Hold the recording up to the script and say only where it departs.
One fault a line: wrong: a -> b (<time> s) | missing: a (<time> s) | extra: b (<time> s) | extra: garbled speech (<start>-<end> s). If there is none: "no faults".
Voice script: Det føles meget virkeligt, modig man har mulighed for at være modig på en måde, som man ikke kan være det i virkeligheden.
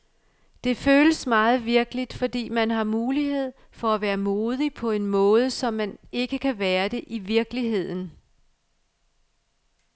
wrong: modig -> fordi (2.1 s)